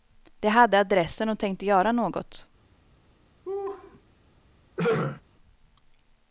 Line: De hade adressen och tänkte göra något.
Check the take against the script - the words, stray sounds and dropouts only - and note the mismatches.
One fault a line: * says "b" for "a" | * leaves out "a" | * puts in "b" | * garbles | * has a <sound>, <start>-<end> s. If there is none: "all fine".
* has a laugh, 3.4-4.0 s
* has a throat clearing, 4.8-5.2 s